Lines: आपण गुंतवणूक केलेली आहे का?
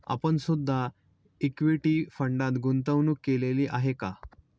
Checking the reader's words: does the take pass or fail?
fail